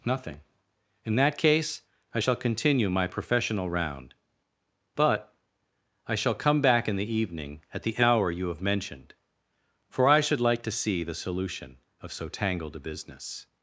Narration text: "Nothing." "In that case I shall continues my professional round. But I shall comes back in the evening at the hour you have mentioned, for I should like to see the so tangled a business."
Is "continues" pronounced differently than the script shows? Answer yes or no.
yes